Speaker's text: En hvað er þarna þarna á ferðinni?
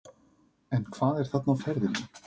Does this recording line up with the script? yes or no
no